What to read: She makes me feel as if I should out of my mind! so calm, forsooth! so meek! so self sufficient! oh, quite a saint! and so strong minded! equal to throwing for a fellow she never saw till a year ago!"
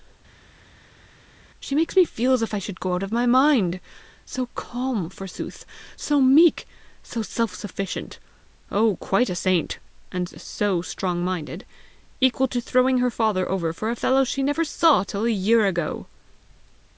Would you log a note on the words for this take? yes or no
yes